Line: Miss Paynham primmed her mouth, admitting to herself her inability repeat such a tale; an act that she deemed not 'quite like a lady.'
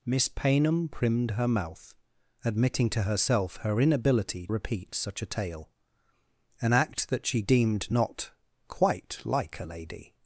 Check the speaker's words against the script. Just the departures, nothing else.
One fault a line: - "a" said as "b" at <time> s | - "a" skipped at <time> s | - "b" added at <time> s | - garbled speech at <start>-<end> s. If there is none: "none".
none